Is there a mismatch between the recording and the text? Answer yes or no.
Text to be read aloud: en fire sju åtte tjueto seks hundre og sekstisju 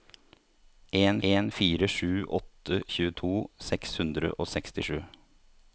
yes